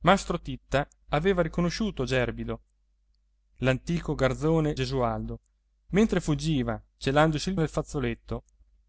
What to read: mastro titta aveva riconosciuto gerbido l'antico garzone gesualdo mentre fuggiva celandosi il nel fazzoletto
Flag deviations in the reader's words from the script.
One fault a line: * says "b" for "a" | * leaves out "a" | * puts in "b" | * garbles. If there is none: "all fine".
all fine